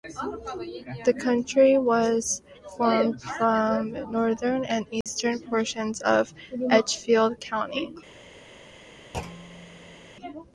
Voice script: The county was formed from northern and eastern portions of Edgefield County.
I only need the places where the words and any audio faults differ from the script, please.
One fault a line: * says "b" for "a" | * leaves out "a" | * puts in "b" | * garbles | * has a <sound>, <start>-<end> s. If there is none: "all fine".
* has a dropout, 5.0-5.1 s
* has a thud, 9.1-10.1 s